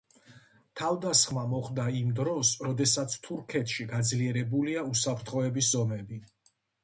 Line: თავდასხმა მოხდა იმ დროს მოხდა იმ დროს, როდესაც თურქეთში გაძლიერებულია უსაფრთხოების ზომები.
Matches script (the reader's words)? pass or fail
fail